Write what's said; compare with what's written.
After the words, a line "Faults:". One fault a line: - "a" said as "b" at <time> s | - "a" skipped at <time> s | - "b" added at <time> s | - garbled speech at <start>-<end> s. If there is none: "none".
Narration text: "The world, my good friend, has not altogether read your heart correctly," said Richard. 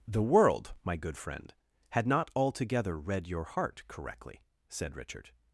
"The world, my good friend, had not altogether read your heart correctly," said Richard.
Faults:
- "has" said as "had" at 1.9 s